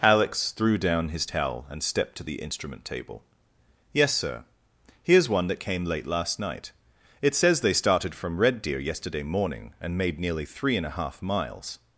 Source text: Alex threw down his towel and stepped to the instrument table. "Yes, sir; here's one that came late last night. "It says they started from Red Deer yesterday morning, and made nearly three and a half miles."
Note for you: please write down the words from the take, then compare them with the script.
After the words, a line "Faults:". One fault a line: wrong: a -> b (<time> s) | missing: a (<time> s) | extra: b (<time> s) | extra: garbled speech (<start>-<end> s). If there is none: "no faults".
Alex threw down his towel and stepped to the instrument table. "Yes, sir; here's one that came late last night. "It says they started from Red Deer yesterday morning, and made nearly three and a half miles."
Faults:
no faults